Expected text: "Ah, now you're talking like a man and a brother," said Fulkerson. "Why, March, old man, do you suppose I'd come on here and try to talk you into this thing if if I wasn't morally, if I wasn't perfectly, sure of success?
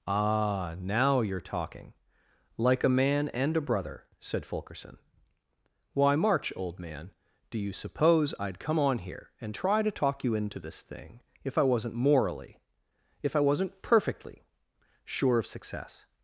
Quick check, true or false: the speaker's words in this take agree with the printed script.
false